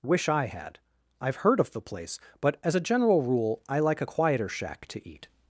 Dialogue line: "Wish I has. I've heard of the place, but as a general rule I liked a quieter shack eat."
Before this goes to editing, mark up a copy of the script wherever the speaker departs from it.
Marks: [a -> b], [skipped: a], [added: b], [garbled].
"Wish I [has. -> had] I've heard of the place, but as a general rule I [liked -> like] a quieter shack [added: to] eat."